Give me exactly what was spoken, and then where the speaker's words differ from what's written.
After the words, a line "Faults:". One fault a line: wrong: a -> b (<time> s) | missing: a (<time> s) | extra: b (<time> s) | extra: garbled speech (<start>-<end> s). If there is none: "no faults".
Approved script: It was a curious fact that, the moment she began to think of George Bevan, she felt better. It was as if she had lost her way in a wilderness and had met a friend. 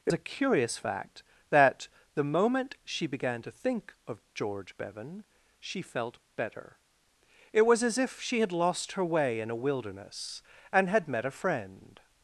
It a curious fact that, the moment she began to think of George Bevan, she felt better. It was as if she had lost her way in a wilderness and had met a friend.
Faults:
missing: was (0.1 s)